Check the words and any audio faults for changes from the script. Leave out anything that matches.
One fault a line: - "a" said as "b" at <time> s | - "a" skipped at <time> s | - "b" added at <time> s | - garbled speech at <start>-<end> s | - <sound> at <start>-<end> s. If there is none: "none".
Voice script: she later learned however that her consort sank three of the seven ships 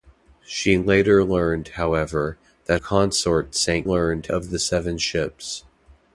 - "her" skipped at 2.8 s
- "three" said as "learned" at 3.8 s